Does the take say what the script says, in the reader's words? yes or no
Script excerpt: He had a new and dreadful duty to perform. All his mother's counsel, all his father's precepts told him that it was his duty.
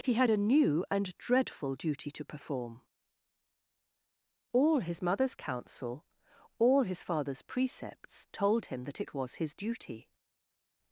yes